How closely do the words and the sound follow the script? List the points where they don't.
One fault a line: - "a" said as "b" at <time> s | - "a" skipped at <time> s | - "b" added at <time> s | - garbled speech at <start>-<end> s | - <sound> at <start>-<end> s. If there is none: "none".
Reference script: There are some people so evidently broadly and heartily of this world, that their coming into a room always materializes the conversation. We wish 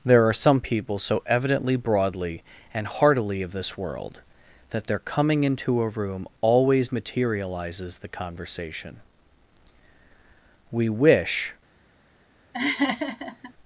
- laugh at 12.5-13.5 s